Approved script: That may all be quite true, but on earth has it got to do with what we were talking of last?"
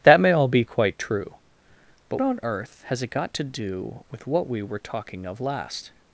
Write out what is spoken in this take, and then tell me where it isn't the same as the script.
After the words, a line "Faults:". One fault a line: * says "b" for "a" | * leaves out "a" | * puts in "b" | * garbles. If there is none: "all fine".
That may all be quite true, but on earth has it got to do with what we were talking of last?"
Faults:
all fine